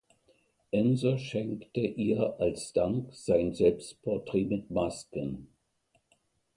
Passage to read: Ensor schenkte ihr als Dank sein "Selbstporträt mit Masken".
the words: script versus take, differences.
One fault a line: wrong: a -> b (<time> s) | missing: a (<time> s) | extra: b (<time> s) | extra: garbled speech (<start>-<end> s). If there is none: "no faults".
no faults